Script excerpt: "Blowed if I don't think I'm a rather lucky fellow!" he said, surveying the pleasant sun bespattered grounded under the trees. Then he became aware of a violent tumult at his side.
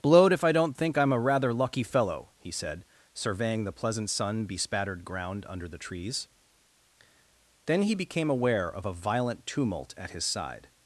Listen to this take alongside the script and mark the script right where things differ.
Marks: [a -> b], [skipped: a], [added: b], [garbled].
"Blowed if I don't think I'm a rather lucky fellow!" he said, surveying the pleasant sun bespattered [grounded -> ground] under the trees. Then he became aware of a violent tumult at his side.